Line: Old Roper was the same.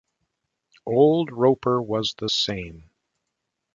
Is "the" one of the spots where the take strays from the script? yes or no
no